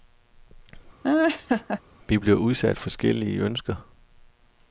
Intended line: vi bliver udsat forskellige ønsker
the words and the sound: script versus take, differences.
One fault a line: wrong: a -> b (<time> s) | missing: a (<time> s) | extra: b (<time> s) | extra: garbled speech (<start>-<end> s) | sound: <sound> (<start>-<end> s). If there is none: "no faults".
sound: laugh (1.0-1.8 s)